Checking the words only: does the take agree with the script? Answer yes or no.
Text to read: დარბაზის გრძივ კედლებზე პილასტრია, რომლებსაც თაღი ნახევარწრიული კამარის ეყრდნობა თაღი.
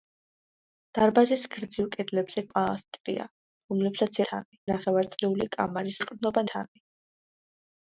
yes